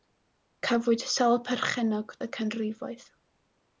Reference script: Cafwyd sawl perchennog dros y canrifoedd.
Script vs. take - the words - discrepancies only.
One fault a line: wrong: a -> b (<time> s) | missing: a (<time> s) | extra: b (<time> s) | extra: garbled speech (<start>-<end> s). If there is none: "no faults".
missing: dros (2.1 s)